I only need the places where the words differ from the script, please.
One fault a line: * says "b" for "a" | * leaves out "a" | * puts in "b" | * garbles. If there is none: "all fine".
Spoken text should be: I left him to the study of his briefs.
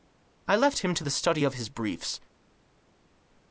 all fine